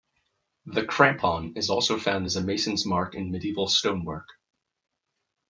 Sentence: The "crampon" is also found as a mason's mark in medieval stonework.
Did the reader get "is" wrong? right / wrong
right